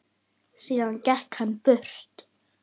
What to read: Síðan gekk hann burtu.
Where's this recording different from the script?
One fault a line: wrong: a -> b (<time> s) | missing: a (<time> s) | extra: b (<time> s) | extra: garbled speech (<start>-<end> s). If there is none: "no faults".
no faults